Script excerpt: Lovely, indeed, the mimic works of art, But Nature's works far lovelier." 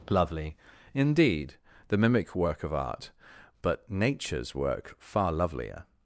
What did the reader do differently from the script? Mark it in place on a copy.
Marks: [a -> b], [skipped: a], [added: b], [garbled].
Lovely, indeed, the mimic [works -> work] of art, But Nature's [works -> work] far lovelier."